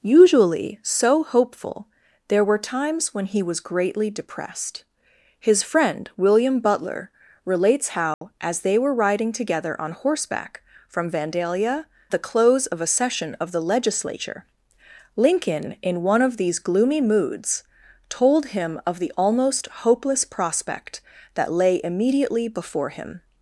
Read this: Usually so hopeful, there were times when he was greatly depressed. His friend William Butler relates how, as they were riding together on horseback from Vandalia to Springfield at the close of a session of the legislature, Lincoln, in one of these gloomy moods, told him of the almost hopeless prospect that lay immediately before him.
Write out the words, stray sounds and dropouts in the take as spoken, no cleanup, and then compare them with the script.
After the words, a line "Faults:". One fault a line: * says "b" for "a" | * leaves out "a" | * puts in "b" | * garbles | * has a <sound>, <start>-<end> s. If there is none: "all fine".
Usually so hopeful, there were times when he was greatly depressed. His friend William Butler relates how, as they were riding together on horseback from Vandalia the close of a session of the legislature, Lincoln, in one of these gloomy moods, told him of the almost hopeless prospect that lay immediately before him.
Faults:
* has a dropout, 8.1-8.2 s
* leaves out "to Springfield at"